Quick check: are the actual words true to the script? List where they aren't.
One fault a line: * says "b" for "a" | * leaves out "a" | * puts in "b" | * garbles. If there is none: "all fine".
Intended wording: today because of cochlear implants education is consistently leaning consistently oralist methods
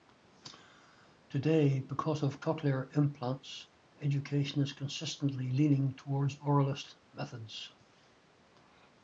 * says "towards" for "consistently"